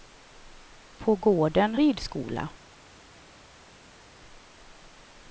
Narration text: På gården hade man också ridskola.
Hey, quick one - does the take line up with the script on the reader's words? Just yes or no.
no